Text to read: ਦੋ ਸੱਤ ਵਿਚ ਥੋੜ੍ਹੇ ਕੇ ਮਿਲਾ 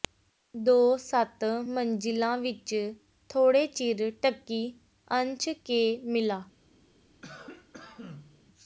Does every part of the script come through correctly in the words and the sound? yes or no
no